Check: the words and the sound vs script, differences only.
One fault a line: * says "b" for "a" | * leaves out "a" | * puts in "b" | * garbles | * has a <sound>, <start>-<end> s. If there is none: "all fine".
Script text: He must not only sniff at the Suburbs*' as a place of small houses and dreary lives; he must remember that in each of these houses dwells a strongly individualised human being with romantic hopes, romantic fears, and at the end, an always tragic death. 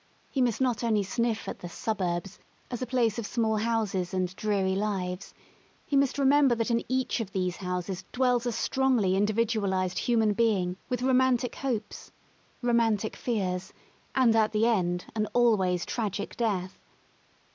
all fine